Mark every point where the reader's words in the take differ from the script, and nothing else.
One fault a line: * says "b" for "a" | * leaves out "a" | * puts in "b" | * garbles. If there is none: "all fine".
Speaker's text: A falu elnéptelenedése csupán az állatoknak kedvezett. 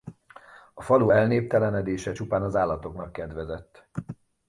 all fine